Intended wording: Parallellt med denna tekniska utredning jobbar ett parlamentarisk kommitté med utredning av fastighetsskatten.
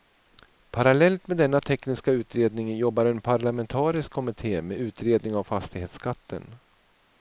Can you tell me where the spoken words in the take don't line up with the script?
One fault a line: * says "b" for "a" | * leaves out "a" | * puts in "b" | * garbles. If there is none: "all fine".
* says "en" for "ett"